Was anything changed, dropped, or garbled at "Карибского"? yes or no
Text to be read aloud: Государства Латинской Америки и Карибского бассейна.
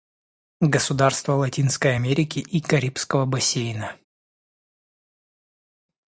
no